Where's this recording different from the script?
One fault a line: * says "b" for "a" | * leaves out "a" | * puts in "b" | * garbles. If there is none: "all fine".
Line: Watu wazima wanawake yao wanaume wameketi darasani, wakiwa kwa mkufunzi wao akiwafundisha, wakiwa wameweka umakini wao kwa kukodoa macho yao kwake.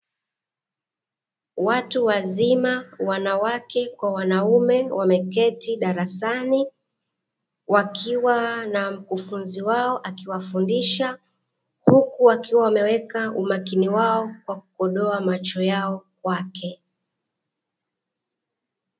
* says "kwa" for "yao"
* says "na" for "kwa"
* puts in "huku"